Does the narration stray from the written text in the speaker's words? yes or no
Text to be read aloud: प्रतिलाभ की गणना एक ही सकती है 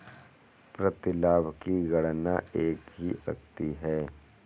no